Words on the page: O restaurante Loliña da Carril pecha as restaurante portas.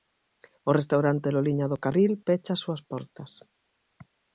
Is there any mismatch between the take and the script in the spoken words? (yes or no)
yes